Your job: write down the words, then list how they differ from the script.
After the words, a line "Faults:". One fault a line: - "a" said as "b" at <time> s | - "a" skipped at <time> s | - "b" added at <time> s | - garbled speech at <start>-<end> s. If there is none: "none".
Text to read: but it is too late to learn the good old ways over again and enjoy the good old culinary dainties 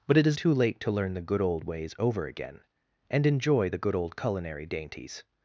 but it is too late to learn the good old ways over again and enjoy the good old culinary dainties
Faults:
none